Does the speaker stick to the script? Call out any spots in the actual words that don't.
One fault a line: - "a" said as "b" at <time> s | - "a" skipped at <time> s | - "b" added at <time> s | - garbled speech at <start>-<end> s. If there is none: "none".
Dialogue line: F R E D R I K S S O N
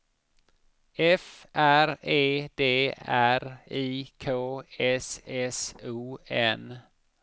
none